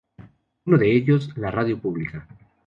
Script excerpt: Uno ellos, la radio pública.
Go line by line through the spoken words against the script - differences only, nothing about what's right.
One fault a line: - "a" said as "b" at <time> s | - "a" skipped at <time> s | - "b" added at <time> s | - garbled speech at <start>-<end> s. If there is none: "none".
- "de" added at 0.8 s